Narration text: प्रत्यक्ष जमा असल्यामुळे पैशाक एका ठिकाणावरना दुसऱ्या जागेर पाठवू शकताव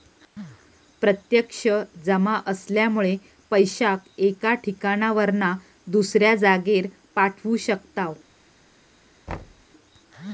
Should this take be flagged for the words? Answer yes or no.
no